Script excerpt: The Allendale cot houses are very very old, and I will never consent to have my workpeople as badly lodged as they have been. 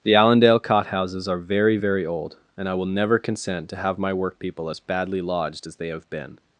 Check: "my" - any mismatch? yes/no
no